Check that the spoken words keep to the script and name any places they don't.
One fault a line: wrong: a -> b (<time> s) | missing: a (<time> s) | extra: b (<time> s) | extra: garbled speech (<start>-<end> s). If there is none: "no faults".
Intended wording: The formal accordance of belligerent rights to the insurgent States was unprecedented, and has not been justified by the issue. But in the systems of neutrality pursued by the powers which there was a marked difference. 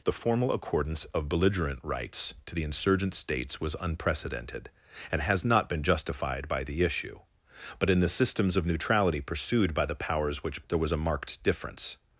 no faults